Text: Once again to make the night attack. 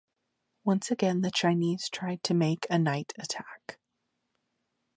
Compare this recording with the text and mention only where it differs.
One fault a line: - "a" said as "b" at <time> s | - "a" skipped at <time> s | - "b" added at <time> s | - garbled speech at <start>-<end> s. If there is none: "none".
- "the Chinese tried" added at 1.2 s
- "the" said as "a" at 2.7 s